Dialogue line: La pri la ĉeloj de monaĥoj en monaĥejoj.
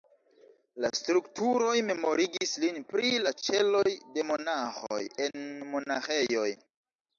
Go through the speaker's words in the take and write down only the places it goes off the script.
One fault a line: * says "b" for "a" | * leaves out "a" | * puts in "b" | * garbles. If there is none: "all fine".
* puts in "strukturoj memorigis lin"